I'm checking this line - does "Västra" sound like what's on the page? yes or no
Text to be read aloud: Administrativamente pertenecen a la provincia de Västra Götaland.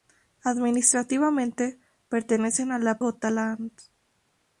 no